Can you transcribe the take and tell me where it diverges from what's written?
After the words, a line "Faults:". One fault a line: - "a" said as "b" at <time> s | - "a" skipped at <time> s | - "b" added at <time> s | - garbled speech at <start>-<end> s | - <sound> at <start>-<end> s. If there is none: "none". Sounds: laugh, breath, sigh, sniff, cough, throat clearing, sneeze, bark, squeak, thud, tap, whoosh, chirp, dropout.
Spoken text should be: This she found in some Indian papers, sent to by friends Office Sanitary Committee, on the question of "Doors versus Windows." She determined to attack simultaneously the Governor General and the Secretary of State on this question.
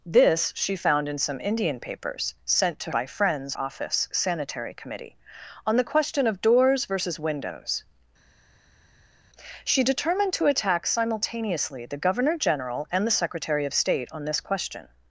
This she found in some Indian papers, sent to by friends Office Sanitary Committee, on the question of "Doors versus Windows." She determined to attack simultaneously the Governor General and the Secretary of State on this question.
Faults:
none